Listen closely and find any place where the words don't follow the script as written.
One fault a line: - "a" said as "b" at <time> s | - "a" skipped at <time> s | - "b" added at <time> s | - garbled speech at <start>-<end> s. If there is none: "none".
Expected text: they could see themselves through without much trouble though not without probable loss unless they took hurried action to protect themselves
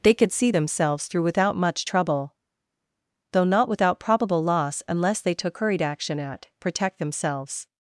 - "to" said as "at" at 6.2 s